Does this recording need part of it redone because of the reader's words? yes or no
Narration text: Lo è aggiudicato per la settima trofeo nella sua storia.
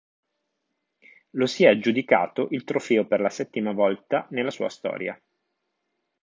yes